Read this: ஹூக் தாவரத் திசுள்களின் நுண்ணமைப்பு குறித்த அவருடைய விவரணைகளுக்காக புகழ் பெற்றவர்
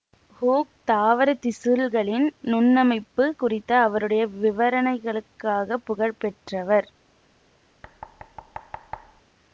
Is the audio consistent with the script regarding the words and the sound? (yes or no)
no